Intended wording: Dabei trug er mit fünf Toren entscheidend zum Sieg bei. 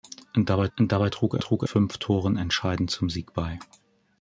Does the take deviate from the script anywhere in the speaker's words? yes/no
yes